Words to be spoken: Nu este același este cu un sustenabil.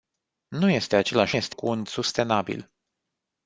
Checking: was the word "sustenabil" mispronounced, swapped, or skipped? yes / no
no